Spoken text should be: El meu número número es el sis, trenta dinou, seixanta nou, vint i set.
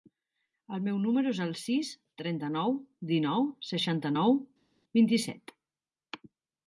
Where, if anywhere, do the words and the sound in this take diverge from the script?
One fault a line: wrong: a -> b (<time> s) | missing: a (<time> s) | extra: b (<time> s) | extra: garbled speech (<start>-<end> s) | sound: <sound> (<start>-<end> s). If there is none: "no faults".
missing: número (1.3 s)
extra: nou (2.6 s)